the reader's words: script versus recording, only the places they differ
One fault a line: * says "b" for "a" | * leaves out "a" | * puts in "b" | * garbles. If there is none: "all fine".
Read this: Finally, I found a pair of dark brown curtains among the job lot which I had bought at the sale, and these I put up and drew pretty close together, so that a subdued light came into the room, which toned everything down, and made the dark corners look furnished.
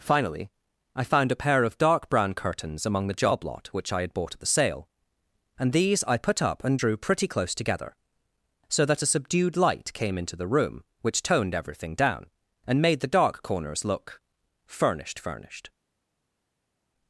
* puts in "furnished"